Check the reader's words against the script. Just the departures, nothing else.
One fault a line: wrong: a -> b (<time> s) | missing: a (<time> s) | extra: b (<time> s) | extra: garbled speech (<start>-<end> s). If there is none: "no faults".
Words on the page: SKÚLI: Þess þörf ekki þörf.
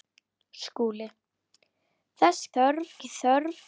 no faults